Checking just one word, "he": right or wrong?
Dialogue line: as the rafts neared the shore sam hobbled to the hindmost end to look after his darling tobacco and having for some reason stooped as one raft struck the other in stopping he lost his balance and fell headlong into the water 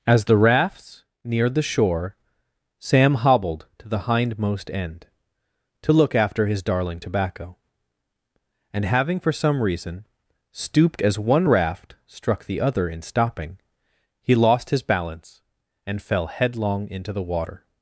right